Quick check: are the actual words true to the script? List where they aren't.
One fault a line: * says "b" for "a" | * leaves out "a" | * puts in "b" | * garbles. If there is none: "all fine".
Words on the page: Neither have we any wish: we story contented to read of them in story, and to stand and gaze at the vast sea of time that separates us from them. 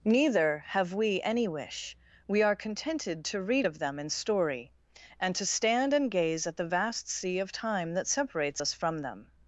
* says "are" for "story"